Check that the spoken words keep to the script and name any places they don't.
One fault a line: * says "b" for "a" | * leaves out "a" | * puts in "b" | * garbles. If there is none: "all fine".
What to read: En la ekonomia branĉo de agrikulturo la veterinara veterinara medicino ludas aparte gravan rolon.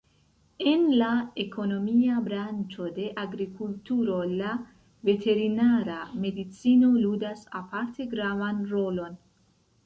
* leaves out "veterinara"